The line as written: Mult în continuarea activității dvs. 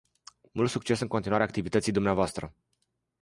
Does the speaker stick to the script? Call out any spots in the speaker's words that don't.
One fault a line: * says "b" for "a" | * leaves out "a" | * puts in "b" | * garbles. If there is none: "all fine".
* puts in "succes"